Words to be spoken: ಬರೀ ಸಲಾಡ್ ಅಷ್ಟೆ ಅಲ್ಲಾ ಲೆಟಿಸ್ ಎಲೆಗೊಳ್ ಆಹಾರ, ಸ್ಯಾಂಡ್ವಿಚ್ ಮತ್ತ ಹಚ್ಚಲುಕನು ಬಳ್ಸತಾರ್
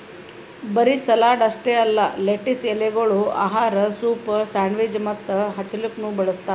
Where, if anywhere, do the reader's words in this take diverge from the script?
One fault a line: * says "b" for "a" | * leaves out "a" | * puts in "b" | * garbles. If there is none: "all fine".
* puts in "ಸೂಪ್"